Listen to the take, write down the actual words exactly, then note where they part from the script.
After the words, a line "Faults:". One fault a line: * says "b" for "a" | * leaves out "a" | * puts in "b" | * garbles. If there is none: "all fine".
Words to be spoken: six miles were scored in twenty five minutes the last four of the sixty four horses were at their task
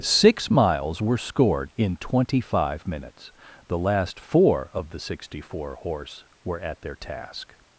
six miles were scored in twenty five minutes the last four of the sixty four horse were at their task
Faults:
* says "horse" for "horses"